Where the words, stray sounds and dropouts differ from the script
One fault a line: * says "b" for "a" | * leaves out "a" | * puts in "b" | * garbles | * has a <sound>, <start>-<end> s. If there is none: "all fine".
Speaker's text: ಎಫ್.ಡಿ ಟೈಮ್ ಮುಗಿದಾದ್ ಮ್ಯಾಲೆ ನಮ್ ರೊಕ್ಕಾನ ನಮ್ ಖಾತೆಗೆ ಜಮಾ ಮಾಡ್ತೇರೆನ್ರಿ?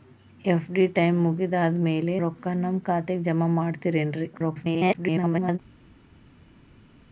* leaves out "ನಮ್"
* garbles